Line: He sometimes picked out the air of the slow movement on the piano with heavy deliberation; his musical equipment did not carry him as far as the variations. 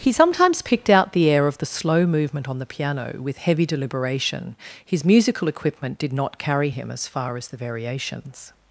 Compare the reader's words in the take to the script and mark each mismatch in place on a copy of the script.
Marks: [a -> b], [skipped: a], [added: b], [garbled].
He sometimes picked out the air of the slow movement on the piano with heavy deliberation; his musical equipment did not carry him as far as the variations.